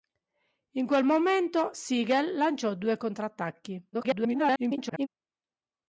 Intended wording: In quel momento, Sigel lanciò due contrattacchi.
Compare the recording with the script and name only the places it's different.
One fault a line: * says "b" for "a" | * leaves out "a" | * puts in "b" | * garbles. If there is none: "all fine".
* garbles